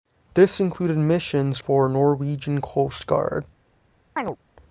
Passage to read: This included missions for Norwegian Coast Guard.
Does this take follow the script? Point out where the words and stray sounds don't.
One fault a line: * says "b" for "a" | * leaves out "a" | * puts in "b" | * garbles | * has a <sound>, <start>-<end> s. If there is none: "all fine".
* has a chirp, 4.2-4.4 s